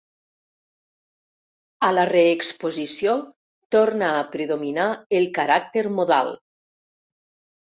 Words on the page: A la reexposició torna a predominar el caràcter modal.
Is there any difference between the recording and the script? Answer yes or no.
no